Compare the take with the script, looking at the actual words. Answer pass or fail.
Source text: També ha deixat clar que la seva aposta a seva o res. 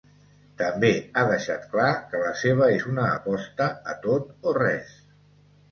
fail